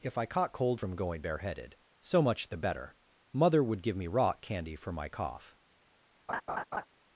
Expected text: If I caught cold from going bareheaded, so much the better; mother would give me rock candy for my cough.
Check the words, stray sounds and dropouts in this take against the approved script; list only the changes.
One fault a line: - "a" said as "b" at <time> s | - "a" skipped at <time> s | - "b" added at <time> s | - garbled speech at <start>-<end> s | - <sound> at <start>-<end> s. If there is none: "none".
- laugh at 6.3-6.9 s